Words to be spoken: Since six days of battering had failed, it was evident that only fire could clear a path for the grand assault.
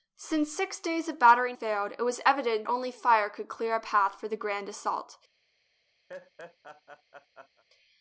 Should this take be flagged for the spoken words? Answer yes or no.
yes